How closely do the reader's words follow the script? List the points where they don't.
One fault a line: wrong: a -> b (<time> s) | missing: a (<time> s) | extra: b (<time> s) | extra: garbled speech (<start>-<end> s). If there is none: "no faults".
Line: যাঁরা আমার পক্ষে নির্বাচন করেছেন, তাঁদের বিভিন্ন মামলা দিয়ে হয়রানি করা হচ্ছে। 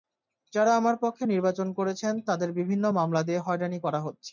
no faults